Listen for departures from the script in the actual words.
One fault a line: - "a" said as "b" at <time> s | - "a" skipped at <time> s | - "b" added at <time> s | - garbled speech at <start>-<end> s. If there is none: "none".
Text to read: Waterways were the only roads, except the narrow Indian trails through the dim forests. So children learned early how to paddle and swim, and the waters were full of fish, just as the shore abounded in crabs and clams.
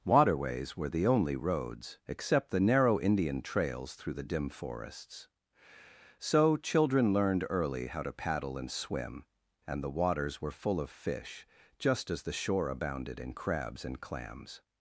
none